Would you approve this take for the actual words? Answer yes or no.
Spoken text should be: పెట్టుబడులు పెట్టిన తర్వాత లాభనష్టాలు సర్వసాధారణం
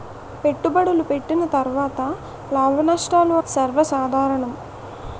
yes